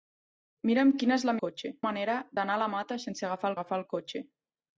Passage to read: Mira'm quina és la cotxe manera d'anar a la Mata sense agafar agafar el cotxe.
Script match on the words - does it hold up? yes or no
yes